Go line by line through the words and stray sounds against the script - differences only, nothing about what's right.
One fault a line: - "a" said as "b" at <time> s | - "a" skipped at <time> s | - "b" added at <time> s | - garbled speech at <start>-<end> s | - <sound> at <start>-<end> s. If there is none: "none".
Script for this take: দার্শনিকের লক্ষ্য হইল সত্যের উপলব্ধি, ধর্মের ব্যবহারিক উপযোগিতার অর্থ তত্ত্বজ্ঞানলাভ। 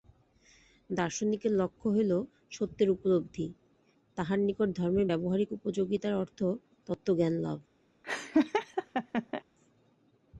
- "তাঁহার নিকট" added at 4.2 s
- laugh at 8.0-9.4 s